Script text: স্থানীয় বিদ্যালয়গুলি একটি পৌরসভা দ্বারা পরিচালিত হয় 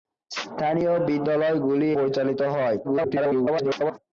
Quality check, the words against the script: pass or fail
fail